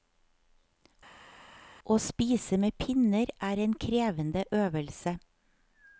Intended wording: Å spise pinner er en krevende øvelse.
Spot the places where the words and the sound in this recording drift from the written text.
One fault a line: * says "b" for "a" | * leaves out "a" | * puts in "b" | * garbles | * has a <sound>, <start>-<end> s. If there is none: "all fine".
* puts in "med"